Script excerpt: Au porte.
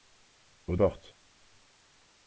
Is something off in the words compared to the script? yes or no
no